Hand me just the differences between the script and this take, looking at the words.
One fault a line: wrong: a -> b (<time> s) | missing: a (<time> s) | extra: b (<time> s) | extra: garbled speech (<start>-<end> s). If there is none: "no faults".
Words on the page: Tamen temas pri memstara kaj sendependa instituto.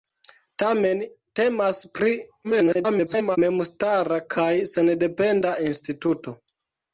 extra: garbled speech (2.4-3.4 s)